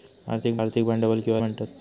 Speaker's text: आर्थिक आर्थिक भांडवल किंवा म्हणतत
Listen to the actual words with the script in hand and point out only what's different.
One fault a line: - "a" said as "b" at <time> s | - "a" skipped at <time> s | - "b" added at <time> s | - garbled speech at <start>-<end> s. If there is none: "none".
none